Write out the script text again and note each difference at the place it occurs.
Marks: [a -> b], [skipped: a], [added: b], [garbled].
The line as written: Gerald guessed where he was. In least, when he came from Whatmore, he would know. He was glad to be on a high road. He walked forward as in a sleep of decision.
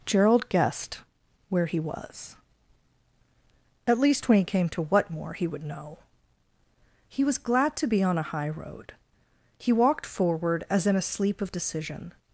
Gerald guessed where he was. [In -> At] least, when he came [from -> to] Whatmore, he would know. He was glad to be on a high road. He walked forward as in a sleep of decision.